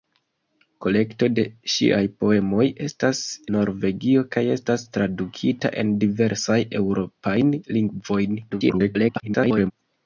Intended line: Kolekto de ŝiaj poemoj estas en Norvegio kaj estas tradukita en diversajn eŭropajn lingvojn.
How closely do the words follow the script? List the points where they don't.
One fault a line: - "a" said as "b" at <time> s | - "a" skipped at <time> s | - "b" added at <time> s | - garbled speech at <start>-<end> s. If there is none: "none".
- "en" skipped at 3.2 s
- garbled speech at 8.5-9.7 s